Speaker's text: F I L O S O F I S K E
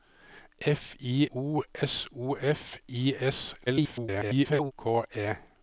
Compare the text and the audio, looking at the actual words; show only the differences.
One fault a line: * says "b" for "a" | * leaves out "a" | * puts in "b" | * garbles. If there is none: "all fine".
* leaves out "L"
* garbles